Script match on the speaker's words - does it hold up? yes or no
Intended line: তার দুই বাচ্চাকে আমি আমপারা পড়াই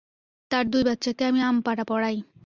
yes